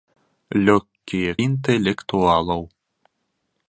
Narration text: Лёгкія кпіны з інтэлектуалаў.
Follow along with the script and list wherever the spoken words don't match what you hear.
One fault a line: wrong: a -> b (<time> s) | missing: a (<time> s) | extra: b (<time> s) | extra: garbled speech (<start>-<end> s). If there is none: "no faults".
missing: кпіны з (1.3 s)